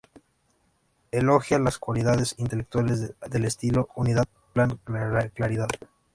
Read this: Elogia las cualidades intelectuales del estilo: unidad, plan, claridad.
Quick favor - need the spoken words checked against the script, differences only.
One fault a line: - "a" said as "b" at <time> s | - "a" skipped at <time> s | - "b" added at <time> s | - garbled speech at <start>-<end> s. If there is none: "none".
none